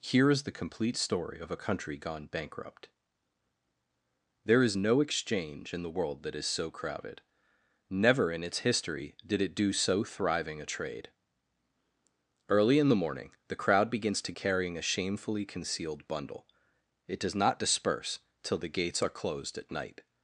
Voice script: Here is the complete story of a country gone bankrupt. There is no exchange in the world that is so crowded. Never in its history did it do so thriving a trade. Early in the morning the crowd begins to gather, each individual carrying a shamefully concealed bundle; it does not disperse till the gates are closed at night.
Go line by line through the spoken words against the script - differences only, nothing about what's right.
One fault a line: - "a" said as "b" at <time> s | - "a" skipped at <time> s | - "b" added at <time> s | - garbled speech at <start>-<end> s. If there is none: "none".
- "gather each individual" skipped at 14.3 s